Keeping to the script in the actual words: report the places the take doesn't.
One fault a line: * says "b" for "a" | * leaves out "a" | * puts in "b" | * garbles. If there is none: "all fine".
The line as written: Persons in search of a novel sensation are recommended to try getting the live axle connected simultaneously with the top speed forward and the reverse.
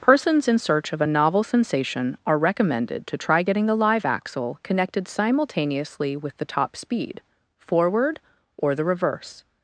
* says "or" for "and"